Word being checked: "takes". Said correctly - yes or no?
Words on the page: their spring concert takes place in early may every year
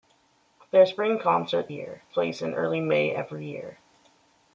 no